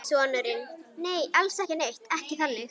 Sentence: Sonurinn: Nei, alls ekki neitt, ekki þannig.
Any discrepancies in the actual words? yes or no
no